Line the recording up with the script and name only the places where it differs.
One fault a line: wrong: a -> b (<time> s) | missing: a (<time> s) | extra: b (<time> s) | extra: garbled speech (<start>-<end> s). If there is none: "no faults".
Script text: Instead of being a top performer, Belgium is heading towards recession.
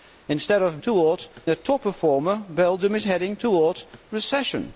wrong: being -> towards (0.8 s)